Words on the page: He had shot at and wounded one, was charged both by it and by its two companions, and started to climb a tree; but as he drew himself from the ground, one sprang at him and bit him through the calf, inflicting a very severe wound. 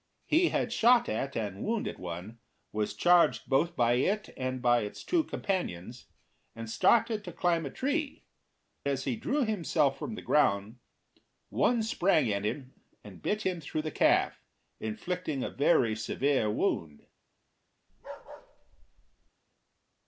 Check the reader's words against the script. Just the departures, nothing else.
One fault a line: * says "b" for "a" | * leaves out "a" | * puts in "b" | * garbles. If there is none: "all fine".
* leaves out "but"